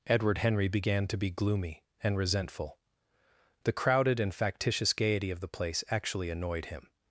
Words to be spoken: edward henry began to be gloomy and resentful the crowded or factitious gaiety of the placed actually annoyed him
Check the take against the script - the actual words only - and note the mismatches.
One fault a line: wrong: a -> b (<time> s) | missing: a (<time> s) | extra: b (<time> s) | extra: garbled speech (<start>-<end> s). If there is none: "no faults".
wrong: or -> and (4.2 s)
wrong: placed -> place (5.5 s)